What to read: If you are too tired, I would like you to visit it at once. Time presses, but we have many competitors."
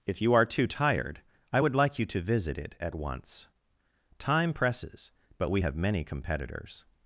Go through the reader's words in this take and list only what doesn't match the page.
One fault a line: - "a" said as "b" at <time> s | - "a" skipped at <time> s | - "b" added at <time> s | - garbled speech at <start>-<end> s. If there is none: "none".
none